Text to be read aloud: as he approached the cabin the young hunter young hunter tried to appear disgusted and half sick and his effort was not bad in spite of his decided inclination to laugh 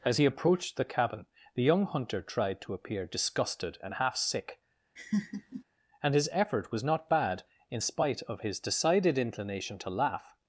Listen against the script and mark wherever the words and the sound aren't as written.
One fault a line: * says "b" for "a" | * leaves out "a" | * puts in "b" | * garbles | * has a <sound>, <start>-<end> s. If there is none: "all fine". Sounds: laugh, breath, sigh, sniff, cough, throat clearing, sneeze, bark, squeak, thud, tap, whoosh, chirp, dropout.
* leaves out "young hunter"
* has a laugh, 5.0-5.6 s